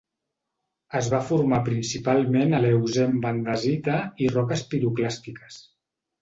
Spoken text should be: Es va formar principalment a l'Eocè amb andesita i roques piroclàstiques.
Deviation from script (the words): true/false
false